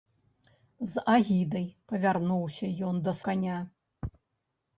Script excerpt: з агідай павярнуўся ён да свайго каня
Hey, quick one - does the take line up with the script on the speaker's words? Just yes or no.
no